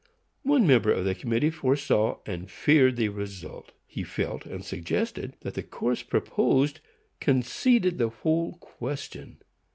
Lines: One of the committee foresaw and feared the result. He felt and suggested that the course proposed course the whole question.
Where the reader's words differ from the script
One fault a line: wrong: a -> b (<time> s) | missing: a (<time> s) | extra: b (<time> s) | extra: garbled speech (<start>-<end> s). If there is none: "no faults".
extra: member (0.7 s)
wrong: course -> conceded (7.2 s)